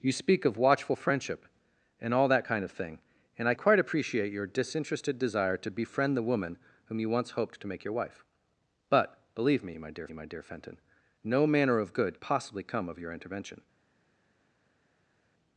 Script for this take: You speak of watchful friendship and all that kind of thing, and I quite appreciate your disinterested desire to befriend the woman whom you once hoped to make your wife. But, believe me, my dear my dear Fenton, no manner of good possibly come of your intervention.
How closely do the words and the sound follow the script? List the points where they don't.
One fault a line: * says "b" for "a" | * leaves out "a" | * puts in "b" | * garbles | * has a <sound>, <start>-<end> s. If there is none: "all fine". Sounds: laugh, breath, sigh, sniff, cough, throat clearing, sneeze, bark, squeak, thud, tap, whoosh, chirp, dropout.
all fine